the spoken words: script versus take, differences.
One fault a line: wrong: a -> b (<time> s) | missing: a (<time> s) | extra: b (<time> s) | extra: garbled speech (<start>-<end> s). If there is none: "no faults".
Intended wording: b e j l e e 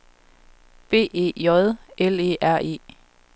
extra: r (2.4 s)